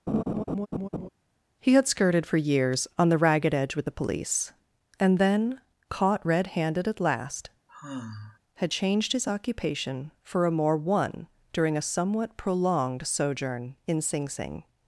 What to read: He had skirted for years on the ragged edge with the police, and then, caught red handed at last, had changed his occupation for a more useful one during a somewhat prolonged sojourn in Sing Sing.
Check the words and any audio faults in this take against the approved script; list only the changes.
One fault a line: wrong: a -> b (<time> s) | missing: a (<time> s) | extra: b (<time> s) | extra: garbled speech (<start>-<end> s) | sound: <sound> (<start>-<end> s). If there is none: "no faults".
sound: laugh (0.1-1.1 s)
sound: sigh (7.7-8.4 s)
missing: useful (10.8 s)